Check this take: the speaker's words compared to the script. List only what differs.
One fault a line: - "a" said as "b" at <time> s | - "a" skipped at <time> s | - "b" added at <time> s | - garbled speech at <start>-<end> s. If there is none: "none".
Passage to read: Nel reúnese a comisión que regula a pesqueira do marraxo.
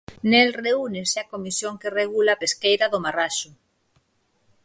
none